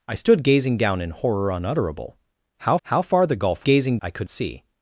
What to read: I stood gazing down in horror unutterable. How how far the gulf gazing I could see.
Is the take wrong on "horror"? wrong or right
right